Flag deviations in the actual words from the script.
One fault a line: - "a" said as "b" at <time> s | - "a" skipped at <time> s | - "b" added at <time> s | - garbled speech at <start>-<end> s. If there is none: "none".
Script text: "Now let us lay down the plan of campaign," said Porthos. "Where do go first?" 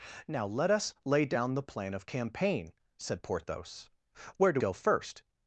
none